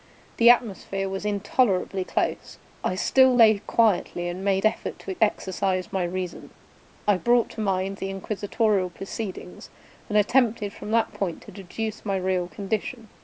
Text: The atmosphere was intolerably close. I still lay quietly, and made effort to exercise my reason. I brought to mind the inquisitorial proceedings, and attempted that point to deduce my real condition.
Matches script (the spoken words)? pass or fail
fail